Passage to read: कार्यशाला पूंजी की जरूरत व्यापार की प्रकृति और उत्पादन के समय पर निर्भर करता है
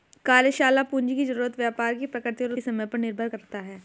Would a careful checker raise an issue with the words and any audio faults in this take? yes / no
yes